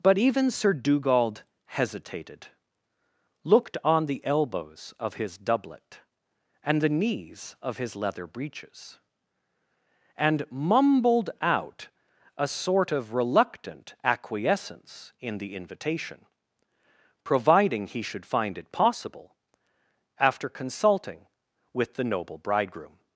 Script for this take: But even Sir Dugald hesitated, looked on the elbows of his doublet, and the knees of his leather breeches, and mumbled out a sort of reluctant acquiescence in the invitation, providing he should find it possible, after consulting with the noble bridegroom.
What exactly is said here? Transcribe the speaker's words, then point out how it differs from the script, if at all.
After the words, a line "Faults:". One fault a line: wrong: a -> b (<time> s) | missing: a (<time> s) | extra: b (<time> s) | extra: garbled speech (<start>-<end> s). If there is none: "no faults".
But even Sir Dugald hesitated, looked on the elbows of his doublet, and the knees of his leather breeches, and mumbled out a sort of reluctant acquiescence in the invitation, providing he should find it possible, after consulting with the noble bridegroom.
Faults:
no faults